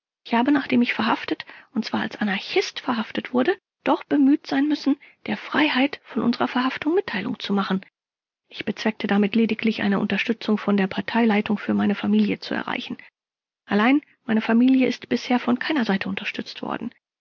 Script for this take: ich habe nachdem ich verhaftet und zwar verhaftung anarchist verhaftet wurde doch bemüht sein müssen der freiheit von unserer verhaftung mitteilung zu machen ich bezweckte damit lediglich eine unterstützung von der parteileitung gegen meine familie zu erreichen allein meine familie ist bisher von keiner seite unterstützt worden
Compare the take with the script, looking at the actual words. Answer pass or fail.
fail